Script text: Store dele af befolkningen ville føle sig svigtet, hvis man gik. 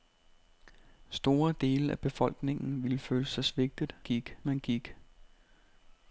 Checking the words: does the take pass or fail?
fail